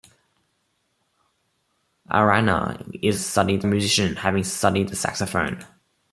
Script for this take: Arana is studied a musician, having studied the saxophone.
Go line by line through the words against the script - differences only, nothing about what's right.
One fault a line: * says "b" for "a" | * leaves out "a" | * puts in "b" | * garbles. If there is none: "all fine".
all fine